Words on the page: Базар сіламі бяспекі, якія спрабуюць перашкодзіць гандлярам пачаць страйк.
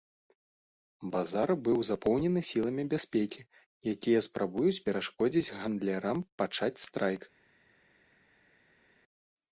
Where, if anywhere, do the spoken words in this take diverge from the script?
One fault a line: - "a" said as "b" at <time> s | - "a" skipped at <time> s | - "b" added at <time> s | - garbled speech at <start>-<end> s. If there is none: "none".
- "быў запоўнены" added at 1.7 s